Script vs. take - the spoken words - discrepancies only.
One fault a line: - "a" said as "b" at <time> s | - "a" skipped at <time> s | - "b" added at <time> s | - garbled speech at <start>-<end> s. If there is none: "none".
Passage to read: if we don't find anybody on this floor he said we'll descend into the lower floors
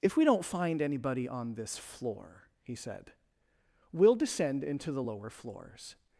none